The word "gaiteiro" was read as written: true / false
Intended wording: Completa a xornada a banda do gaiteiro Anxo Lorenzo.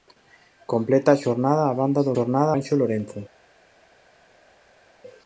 false